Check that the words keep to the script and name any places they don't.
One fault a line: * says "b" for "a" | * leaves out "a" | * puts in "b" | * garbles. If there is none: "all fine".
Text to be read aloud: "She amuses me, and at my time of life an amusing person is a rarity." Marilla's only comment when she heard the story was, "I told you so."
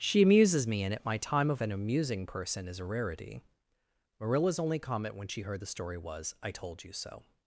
* leaves out "life"